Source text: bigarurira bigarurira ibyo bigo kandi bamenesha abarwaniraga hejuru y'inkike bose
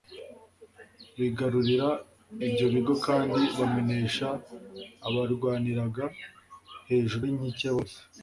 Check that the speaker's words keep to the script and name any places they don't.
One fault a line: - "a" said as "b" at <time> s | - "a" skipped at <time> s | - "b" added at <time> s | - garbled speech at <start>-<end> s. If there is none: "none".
- "bigarurira" skipped at 1.9 s